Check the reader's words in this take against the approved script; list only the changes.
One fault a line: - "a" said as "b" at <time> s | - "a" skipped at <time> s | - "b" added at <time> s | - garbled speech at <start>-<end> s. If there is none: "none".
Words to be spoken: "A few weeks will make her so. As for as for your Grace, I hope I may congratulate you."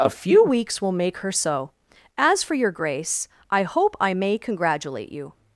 - "as for" skipped at 2.5 s